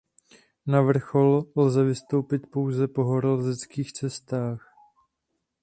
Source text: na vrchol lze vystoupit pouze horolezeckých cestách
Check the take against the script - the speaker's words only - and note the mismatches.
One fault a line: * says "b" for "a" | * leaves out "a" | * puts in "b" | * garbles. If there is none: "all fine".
* puts in "po"